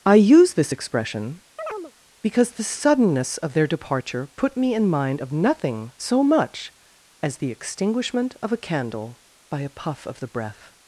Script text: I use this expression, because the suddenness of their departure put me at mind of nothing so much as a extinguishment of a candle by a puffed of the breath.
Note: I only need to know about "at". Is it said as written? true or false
false